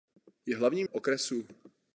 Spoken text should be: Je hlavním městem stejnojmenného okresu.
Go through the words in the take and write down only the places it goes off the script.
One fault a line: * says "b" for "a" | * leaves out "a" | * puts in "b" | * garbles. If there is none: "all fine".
* leaves out "městem stejnojmenného"